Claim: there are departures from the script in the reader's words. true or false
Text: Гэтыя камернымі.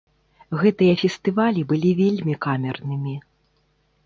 true